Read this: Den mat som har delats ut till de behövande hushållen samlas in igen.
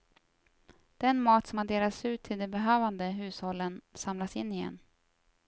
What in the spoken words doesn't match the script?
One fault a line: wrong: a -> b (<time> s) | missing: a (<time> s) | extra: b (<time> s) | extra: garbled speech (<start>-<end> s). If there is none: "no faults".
no faults